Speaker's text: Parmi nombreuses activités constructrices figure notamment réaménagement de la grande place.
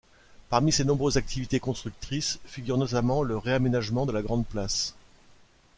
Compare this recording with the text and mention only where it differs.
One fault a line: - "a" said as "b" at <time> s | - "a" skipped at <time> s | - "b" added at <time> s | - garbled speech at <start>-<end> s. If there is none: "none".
- "ses" added at 0.7 s
- "le" added at 3.2 s